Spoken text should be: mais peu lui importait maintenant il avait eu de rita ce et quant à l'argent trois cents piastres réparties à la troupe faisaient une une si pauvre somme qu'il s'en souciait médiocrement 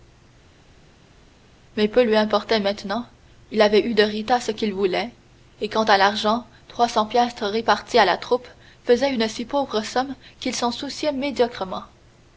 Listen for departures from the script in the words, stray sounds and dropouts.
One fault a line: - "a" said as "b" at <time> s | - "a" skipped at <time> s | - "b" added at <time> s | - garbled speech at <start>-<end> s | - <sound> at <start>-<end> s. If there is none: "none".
- "qu'il voulait" added at 4.5 s
- "une" skipped at 9.3 s